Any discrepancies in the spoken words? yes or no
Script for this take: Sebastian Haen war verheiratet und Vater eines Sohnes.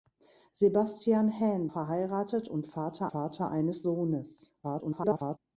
yes